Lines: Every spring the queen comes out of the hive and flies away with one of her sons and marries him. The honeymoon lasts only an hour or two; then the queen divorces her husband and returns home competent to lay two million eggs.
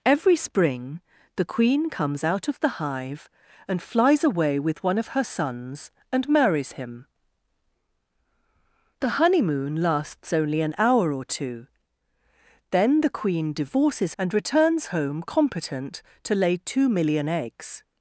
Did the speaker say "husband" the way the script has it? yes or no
no